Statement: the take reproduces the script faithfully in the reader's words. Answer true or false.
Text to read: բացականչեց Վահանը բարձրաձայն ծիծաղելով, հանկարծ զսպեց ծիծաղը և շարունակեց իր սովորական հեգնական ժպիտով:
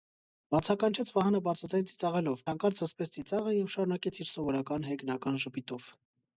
true